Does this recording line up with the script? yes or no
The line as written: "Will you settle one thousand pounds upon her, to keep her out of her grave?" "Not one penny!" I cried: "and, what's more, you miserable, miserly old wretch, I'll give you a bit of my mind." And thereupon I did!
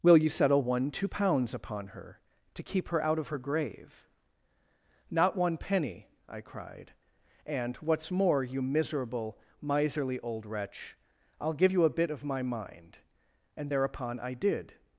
no